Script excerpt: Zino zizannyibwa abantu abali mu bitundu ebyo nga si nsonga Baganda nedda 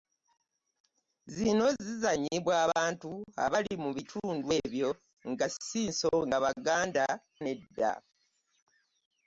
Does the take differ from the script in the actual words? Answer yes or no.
no